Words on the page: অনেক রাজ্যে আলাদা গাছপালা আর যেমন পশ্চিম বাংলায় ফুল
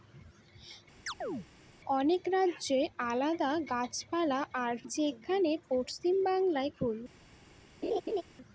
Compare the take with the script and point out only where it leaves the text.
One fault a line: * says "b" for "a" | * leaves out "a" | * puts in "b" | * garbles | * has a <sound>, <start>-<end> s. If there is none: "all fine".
* has a chirp, 1.1-1.5 s
* has a laugh, 7.8-8.2 s